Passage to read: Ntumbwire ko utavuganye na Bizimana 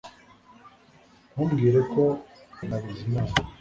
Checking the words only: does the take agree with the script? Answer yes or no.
no